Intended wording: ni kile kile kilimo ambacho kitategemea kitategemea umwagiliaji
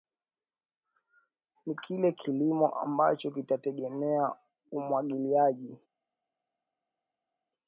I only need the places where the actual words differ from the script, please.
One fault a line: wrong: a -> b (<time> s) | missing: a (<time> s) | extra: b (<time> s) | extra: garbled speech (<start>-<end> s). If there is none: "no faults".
missing: kile (2.1 s)
missing: kitategemea (4.3 s)